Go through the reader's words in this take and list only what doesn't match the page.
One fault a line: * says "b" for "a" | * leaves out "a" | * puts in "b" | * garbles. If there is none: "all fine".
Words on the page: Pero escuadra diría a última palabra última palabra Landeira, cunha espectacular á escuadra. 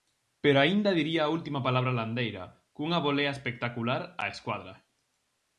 * says "aínda" for "escuadra"
* leaves out "última palabra"
* puts in "volea"